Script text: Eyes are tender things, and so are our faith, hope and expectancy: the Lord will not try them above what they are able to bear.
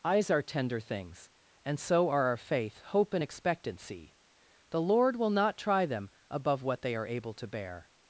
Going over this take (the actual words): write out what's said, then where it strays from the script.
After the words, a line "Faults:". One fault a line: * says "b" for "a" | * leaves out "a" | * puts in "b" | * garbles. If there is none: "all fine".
Eyes are tender things, and so are our faith, hope and expectancy: the Lord will not try them above what they are able to bear.
Faults:
all fine